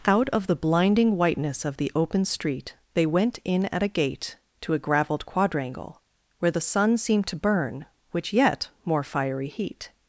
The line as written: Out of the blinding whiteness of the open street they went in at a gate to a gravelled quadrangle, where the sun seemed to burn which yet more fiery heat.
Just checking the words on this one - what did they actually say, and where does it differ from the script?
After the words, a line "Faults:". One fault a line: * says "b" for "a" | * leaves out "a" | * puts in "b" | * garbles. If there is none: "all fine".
Out of the blinding whiteness of the open street they went in at a gate to a gravelled quadrangle, where the sun seemed to burn which yet more fiery heat.
Faults:
all fine